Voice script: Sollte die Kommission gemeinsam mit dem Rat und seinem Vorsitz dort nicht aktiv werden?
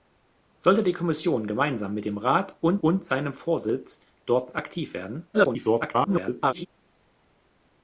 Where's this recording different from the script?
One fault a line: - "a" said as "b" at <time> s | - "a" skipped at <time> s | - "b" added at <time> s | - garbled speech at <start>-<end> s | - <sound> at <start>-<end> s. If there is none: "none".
- "und" added at 2.8 s
- "nicht" skipped at 4.6 s
- garbled speech at 5.3-6.7 s